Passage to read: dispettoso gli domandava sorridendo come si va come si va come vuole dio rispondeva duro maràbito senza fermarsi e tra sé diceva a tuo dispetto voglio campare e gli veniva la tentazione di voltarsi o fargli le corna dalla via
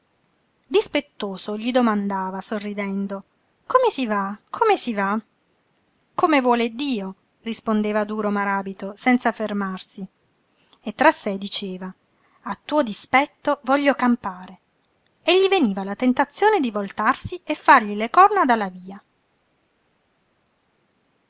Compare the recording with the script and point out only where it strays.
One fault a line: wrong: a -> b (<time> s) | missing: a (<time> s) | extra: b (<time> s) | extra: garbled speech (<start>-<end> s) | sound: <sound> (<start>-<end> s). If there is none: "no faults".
wrong: o -> e (17.4 s)